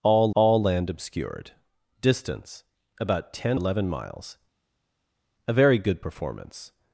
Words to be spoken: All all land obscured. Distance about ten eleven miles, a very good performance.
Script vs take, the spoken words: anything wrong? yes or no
no